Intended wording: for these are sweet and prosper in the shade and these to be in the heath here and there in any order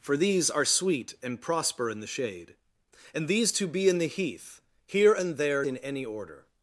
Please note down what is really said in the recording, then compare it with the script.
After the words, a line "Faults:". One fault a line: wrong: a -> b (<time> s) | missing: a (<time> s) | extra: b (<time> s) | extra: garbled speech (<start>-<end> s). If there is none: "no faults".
for these are sweet and prosper in the shade and these to be in the heath here and there in any order
Faults:
no faults